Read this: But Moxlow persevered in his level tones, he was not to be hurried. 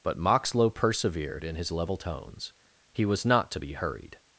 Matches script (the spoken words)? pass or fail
pass